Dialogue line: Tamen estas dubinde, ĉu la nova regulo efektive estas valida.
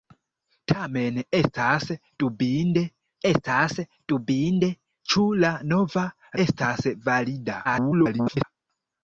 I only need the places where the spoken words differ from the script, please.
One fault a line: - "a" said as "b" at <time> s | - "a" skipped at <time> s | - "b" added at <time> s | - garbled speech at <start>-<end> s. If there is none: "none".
- "estas dubinde" added at 3.3 s
- "regulo efektive" skipped at 6.0 s
- garbled speech at 7.6-8.4 s